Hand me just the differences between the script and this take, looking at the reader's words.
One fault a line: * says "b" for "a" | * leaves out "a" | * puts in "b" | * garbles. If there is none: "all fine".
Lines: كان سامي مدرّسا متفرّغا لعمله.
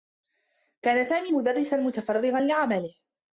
all fine